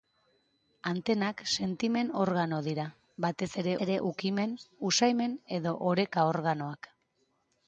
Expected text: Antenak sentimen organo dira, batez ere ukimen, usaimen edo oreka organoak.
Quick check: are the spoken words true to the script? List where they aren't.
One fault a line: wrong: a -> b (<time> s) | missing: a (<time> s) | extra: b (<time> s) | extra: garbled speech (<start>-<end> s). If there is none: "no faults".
extra: ere (3.9 s)